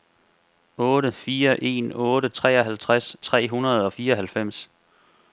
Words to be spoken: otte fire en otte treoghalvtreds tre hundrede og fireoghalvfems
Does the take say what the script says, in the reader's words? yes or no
yes